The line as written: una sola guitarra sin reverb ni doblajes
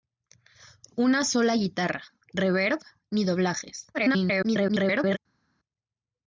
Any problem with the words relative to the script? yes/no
yes